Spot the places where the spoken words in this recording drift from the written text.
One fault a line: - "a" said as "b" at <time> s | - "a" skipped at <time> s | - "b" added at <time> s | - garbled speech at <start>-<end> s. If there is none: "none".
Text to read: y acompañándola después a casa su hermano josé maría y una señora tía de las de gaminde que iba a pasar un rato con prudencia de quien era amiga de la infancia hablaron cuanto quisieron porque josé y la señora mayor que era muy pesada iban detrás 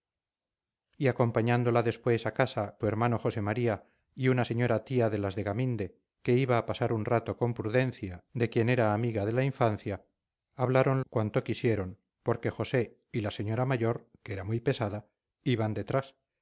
none